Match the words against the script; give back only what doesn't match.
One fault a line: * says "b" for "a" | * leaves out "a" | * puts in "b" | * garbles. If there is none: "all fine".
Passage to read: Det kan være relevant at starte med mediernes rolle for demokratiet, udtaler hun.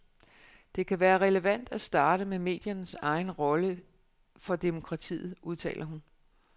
* puts in "egen"